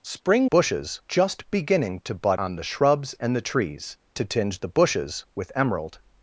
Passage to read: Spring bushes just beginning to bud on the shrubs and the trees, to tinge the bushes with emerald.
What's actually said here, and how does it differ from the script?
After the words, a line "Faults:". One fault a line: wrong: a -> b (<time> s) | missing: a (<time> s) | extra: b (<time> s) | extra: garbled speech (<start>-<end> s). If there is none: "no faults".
Spring bushes just beginning to bud on the shrubs and the trees, to tinge the bushes with emerald.
Faults:
no faults